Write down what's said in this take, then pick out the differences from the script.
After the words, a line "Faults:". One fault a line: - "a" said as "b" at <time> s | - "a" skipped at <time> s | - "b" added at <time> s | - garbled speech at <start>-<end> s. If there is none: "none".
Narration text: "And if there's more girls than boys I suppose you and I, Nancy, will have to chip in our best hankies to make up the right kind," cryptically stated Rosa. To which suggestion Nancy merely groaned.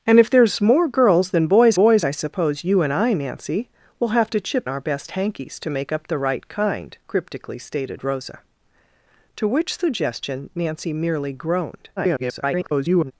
"And if there's more girls than boys boys I suppose you and I, Nancy, will have to chip our best hankies to make up the right kind," cryptically stated Rosa. To which suggestion Nancy merely groaned. [garbled]
Faults:
- "boys" added at 1.7 s
- "in" skipped at 4.7 s
- garbled speech at 12.0-13.1 s